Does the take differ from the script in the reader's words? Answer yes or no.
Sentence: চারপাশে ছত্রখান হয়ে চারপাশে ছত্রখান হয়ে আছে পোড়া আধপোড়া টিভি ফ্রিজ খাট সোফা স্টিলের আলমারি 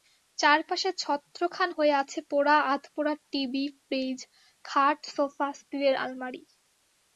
yes